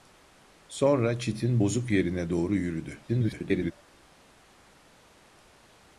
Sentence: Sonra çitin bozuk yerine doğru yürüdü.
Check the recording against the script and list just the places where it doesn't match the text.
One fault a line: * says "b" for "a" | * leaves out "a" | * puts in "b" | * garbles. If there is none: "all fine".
* garbles